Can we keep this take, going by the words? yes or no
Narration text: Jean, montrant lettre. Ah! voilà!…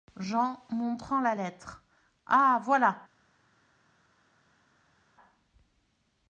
no